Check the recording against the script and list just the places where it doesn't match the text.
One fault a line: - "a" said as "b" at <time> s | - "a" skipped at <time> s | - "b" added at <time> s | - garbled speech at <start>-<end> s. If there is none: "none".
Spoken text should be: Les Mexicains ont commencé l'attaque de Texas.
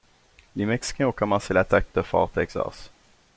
- "Fort" added at 2.0 s